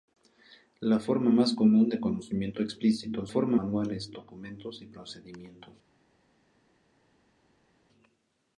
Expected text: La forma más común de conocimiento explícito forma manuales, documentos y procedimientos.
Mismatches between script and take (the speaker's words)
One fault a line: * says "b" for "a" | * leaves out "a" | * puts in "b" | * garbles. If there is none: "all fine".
all fine